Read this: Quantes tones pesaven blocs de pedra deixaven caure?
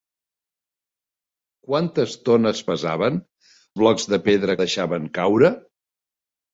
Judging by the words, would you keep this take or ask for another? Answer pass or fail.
pass